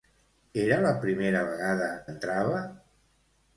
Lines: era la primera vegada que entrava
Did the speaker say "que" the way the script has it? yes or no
no